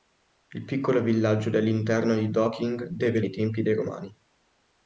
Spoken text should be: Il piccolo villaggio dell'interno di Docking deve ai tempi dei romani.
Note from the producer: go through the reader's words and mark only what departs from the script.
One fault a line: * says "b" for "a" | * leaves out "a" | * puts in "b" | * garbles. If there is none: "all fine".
all fine